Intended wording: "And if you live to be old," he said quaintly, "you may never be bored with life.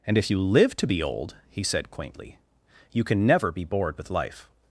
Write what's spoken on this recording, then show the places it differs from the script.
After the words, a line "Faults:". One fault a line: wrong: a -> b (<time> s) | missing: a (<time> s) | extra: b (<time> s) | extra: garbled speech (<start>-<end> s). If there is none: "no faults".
"And if you live to be old," he said quaintly, "you can never be bored with life.
Faults:
wrong: may -> can (3.0 s)